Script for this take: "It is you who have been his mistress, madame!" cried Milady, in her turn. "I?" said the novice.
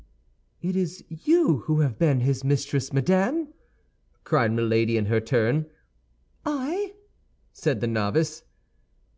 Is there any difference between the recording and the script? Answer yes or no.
no